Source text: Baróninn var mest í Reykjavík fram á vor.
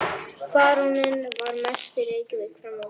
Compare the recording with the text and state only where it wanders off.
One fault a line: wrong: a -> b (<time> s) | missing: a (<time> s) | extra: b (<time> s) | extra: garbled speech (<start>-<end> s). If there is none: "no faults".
no faults